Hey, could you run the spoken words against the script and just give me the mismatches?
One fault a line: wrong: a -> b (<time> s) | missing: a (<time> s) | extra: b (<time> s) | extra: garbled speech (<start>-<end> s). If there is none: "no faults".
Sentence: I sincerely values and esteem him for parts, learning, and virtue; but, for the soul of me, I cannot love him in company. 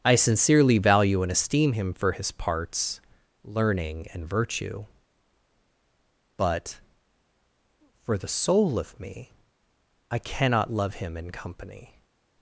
wrong: values -> value (0.8 s)
extra: his (2.1 s)